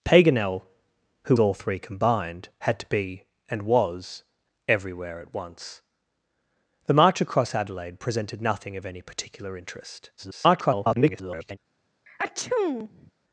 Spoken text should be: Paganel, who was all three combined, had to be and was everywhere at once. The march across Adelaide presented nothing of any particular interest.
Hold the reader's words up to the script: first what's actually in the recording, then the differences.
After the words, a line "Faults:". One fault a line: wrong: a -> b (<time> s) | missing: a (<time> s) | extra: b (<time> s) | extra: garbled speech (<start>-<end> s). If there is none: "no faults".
Paganel, who all three combined, had to be and was everywhere at once. The march across Adelaide presented nothing of any particular interest. [garbled]
Faults:
missing: was (1.4 s)
extra: garbled speech (10.2-11.6 s)